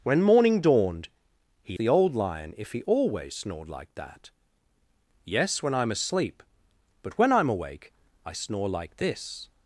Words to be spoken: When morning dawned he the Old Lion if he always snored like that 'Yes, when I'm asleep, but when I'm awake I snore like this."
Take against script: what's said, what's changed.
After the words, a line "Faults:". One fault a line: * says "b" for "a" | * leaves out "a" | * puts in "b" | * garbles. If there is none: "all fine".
When morning dawned he the Old Lion if he always snored like that 'Yes, when I'm asleep, but when I'm awake I snore like this."
Faults:
all fine